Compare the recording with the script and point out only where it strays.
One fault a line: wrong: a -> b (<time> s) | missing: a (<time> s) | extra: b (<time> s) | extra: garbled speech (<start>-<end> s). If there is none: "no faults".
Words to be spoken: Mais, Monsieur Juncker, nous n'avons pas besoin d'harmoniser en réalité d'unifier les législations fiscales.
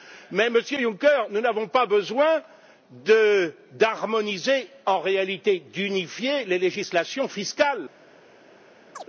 no faults